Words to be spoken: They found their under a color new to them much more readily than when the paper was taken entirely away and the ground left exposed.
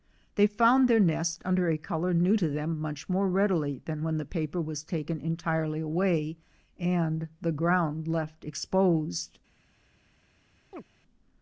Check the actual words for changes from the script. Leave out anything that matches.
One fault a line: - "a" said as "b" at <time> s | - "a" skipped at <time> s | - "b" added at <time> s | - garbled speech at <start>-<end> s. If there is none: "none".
- "nest" added at 1.0 s